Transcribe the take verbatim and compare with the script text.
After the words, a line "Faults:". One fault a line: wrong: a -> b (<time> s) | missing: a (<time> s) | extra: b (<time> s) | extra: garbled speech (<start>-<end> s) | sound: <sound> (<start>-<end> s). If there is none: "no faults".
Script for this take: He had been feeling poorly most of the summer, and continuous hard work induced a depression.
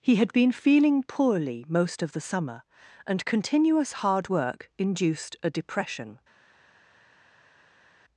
He had been feeling poorly most of the summer, and continuous hard work induced a depression.
Faults:
no faults